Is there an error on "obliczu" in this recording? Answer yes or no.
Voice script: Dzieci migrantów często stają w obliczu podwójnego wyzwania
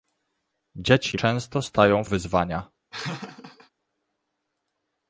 yes